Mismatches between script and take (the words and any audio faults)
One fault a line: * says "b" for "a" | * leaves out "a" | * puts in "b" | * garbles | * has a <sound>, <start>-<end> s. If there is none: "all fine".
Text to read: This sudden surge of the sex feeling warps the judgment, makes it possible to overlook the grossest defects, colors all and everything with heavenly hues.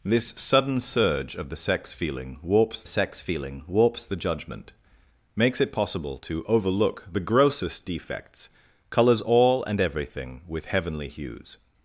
* puts in "sex feeling warps"